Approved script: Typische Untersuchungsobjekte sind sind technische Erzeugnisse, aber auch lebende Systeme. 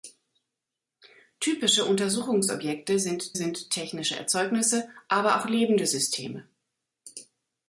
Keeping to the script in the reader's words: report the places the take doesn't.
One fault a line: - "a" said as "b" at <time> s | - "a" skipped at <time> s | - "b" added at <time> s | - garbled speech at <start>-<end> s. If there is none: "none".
none